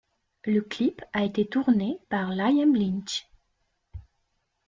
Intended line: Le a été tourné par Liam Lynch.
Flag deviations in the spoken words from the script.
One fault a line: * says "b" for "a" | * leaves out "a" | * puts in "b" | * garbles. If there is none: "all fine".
* puts in "clip"